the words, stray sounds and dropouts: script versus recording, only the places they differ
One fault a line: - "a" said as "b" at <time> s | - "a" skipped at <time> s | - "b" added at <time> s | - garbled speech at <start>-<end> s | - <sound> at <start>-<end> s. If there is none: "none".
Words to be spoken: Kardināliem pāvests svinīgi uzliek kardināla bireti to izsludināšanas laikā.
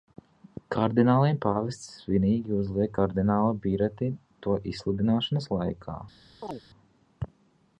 - chirp at 6.4-6.6 s